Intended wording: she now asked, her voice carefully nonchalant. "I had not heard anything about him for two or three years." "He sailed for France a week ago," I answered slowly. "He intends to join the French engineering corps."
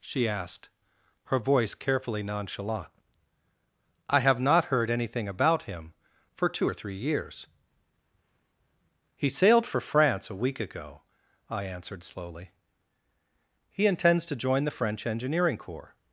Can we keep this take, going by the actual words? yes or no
no